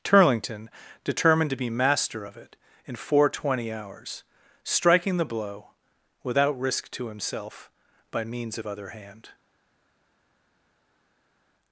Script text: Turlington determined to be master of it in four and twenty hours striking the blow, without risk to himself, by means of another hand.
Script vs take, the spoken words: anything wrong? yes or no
yes